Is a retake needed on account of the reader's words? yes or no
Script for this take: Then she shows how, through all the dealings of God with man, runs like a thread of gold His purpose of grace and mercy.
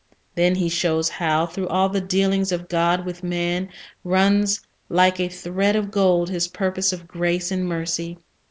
yes